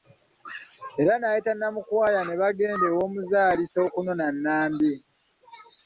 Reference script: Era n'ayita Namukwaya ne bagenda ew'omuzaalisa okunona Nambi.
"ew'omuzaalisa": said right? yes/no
yes